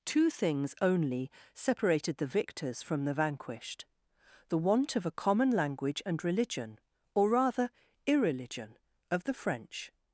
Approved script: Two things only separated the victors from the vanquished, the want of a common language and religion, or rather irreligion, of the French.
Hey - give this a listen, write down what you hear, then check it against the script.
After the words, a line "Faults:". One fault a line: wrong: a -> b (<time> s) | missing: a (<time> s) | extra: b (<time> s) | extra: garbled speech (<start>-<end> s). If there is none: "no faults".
Two things only separated the victors from the vanquished, the want of a common language and religion, or rather irreligion, of the French.
Faults:
no faults